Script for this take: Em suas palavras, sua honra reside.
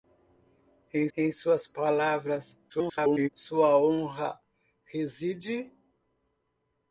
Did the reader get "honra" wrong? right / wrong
right